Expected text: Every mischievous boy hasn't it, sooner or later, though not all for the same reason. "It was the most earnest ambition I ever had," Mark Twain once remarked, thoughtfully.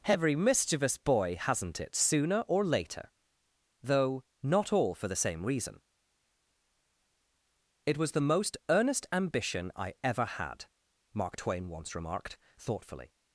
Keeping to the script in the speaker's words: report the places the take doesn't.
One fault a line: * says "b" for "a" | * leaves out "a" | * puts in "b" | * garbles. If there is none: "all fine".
all fine